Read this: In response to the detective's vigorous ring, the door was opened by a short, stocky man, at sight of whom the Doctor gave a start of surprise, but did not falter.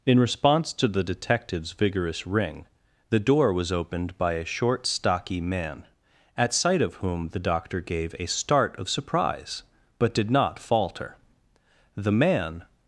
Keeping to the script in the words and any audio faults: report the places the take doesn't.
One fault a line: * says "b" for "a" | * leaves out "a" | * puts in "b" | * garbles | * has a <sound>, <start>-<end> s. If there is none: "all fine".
* puts in "The man"